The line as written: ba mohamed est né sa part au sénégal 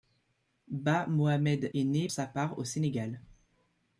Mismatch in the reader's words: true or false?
false